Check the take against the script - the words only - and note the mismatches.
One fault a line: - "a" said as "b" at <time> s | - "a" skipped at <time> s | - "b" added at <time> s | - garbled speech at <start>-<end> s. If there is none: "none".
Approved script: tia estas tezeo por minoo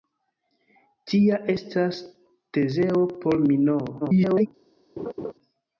- garbled speech at 4.0-4.5 s